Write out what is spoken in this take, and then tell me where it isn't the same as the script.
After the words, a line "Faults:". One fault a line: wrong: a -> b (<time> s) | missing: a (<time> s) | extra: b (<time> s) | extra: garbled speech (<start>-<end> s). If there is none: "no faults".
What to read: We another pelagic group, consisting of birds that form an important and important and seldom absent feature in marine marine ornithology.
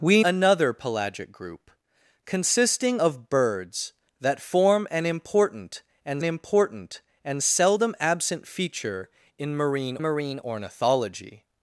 We another pelagic group, consisting of birds that form an important and important and seldom absent feature in marine marine ornithology.
Faults:
no faults